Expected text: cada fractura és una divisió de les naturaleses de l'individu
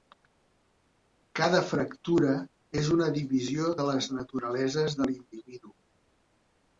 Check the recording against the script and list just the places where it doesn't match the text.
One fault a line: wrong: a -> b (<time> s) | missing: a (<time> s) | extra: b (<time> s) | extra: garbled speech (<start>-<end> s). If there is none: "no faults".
no faults